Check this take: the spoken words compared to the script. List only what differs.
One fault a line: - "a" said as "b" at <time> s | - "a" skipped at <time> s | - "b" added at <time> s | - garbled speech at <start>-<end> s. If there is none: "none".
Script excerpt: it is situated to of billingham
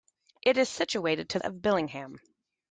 none